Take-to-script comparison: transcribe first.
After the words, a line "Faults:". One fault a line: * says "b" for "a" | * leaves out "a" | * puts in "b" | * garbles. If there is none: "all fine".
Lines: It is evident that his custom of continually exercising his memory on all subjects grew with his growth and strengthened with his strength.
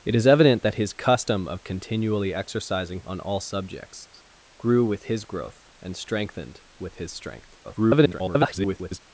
It is evident that his custom of continually exercising on all subjects grew with his growth and strengthened with his strength. [garbled]
Faults:
* leaves out "his memory"
* garbles